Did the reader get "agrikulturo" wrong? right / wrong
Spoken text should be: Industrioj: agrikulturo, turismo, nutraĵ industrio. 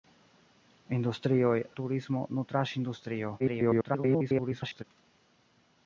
wrong